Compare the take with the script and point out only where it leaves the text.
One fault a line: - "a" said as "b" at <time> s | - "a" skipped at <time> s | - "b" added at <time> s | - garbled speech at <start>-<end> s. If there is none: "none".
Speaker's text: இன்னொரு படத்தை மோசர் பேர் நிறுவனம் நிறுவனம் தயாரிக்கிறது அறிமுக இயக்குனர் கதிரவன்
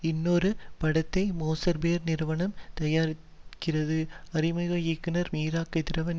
- "நிறுவனம்" skipped at 2.6 s
- "மீரா" added at 5.3 s